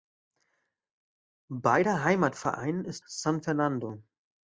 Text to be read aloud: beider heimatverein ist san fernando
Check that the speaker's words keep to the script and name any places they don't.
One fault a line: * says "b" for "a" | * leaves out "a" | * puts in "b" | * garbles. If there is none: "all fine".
all fine